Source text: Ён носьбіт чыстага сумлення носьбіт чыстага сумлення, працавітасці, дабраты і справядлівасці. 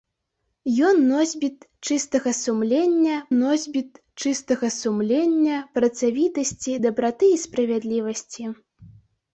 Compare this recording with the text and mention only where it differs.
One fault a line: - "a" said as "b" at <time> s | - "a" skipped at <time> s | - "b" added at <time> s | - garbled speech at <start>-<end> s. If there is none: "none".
none